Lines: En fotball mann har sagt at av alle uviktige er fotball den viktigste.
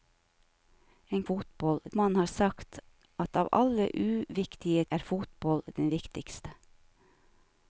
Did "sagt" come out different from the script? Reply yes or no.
no